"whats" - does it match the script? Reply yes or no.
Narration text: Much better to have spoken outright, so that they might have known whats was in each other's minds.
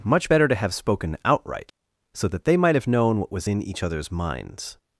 no